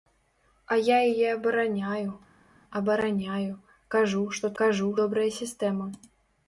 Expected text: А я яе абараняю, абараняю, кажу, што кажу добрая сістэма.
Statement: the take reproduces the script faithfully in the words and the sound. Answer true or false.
true